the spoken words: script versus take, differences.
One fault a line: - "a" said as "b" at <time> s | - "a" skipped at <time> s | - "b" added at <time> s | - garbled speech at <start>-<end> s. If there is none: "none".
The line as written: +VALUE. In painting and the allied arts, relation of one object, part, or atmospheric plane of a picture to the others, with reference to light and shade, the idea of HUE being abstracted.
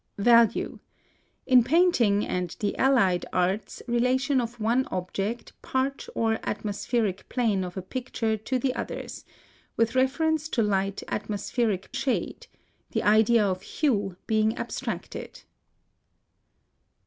- "and" said as "atmospheric" at 11.1 s